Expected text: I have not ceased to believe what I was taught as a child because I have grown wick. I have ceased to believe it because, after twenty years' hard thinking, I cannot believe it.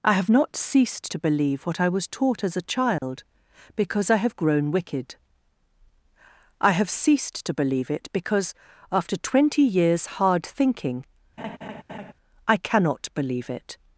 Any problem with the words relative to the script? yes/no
yes